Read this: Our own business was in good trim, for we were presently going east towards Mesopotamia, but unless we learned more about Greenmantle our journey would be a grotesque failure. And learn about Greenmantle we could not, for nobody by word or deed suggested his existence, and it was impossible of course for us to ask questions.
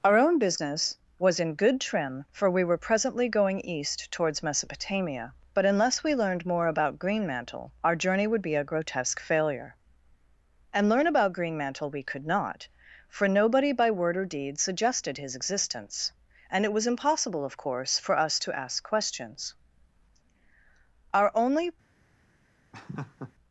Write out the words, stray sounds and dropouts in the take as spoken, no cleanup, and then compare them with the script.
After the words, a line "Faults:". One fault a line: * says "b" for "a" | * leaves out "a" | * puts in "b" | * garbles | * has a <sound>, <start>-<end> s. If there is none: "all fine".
Our own business was in good trim, for we were presently going east towards Mesopotamia, but unless we learned more about Greenmantle our journey would be a grotesque failure. And learn about Greenmantle we could not, for nobody by word or deed suggested his existence, and it was impossible of course for us to ask questions. Our only
Faults:
* puts in "Our only"
* has a laugh, 22.7-23.3 s